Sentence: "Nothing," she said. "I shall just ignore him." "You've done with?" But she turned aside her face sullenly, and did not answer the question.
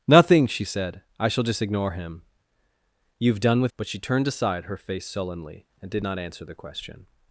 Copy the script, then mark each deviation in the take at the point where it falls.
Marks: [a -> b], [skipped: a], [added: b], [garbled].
"Nothing," she said. "I shall just ignore him." "You've done with?" But she turned aside her face sullenly, and did not answer the question.